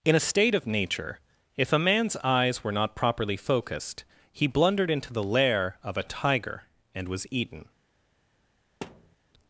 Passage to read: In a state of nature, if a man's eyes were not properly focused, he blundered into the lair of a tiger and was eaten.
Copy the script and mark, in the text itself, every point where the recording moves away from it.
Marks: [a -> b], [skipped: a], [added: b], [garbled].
In a state of nature, if a man's eyes were not properly focused, he blundered into the lair of a tiger and was eaten.